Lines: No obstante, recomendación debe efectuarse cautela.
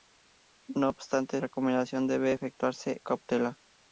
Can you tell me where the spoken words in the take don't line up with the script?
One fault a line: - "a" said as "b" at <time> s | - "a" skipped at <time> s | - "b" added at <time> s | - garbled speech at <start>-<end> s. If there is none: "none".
none